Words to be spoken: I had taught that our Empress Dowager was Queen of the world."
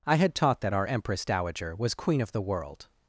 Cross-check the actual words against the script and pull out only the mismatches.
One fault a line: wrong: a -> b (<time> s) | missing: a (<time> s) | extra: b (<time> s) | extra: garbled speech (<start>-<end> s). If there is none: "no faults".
no faults